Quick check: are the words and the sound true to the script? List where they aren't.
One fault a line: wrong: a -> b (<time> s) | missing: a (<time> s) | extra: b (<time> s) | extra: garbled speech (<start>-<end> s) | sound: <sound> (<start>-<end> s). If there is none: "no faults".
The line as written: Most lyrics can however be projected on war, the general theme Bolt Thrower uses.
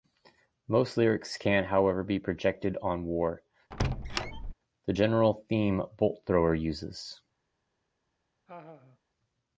sound: squeak (3.7-4.5 s)
sound: laugh (8.5-9.0 s)